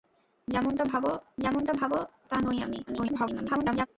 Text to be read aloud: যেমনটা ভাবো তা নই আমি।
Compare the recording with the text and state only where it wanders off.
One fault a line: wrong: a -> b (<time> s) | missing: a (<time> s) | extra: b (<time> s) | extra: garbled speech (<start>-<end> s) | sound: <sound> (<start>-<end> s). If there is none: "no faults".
extra: যেমনটা ভাবো (1.4 s)
extra: garbled speech (2.9-3.9 s)